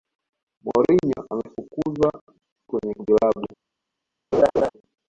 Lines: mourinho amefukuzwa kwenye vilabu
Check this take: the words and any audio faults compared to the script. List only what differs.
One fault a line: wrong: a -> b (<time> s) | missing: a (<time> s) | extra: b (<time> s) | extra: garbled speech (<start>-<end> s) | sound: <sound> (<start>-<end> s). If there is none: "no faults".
sound: laugh (4.3-4.7 s)